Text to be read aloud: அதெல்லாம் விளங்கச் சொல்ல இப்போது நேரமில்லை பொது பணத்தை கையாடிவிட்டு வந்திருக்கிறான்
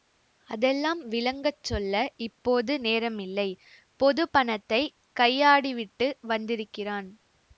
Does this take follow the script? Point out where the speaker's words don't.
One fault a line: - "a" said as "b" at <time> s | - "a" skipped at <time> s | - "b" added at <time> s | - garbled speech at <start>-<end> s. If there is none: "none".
none